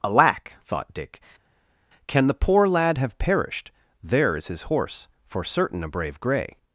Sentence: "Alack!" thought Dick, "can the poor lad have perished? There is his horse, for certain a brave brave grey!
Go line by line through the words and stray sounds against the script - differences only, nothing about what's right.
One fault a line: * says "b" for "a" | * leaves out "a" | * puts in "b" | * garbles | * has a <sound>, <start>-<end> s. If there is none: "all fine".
* leaves out "brave"